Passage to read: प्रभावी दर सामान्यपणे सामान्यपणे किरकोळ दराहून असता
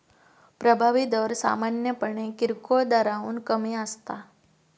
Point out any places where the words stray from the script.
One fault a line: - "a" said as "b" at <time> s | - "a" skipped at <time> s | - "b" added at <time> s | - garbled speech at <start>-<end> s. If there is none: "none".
- "सामान्यपणे" skipped at 2.3 s
- "कमी" added at 3.5 s